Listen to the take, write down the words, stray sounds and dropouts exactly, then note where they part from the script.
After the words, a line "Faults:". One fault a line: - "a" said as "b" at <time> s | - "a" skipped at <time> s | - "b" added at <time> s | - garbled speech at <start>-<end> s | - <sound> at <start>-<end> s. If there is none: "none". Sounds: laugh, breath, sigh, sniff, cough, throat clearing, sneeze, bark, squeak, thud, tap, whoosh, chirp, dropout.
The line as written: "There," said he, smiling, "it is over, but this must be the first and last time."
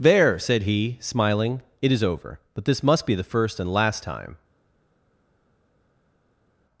"There," said he, smiling, "it is over, but this must be the first and last time."
Faults:
none